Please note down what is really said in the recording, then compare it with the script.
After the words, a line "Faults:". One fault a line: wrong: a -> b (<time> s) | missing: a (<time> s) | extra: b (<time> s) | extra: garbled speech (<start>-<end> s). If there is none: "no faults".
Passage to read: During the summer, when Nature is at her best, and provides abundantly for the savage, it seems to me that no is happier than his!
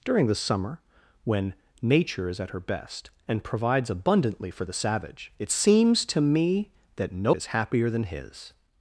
During the summer, when Nature is at her best, and provides abundantly for the savage, it seems to me that no is happier than his!
Faults:
no faults